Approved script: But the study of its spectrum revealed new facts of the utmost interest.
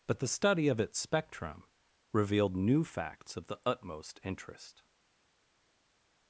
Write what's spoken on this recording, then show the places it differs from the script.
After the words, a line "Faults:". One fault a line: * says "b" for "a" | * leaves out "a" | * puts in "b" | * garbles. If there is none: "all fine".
But the study of its spectrum revealed new facts of the utmost interest.
Faults:
all fine